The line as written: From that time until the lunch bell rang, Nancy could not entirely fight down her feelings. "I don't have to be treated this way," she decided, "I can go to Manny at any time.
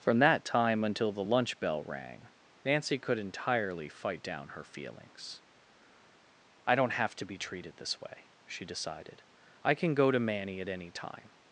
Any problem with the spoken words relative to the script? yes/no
yes